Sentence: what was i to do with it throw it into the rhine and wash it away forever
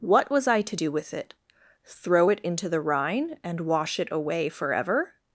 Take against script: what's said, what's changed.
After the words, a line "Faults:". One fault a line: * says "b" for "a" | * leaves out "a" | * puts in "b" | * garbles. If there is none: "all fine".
what was i to do with it throw it into the rhine and wash it away forever
Faults:
all fine